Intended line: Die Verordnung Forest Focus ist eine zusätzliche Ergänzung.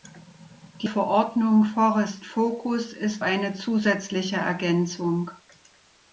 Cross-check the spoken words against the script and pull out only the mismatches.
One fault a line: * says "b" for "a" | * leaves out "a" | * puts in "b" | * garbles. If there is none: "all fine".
all fine